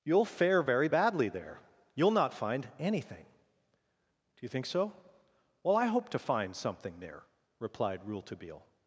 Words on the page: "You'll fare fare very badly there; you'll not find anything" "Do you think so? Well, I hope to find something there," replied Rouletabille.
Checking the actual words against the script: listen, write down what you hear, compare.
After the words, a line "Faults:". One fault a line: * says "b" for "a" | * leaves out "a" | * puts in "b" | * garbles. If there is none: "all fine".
"You'll fare very badly there; you'll not find anything" "Do you think so? Well, I hope to find something there," replied Rouletabille.
Faults:
* leaves out "fare"